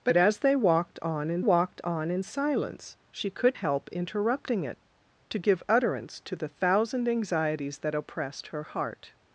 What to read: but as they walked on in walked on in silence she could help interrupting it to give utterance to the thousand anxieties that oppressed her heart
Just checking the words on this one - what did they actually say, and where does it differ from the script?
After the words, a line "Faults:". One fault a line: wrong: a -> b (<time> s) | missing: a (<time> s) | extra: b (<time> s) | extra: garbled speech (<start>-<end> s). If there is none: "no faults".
but as they walked on in walked on in silence she could help interrupting it to give utterance to the thousand anxieties that oppressed her heart
Faults:
no faults